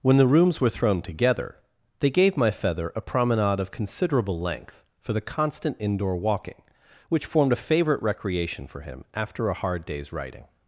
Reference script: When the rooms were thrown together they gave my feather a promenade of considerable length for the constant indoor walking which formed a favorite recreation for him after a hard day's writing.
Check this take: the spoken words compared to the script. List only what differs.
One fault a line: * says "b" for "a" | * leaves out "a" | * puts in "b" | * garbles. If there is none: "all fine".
all fine